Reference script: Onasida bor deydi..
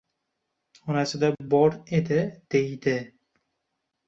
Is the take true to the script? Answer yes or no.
no